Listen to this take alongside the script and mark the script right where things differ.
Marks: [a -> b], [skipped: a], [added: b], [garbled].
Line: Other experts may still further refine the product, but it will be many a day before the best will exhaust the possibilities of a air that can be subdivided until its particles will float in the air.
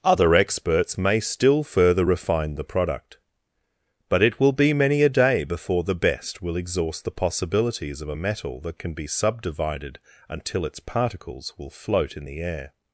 Other experts may still further refine the product, but it will be many a day before the best will exhaust the possibilities of a [air -> metal] that can be subdivided until its particles will float in the air.